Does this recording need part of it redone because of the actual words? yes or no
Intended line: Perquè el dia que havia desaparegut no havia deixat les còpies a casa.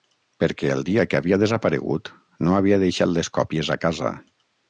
no